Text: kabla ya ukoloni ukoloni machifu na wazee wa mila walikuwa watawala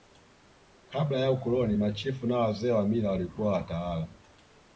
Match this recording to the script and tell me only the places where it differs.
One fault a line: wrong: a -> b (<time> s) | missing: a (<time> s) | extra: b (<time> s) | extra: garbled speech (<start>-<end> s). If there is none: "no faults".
missing: ukoloni (1.8 s)